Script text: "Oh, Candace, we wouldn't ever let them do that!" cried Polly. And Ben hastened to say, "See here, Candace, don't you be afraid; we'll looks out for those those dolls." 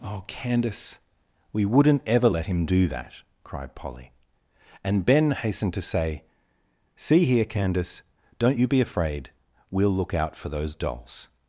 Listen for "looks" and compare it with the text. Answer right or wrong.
wrong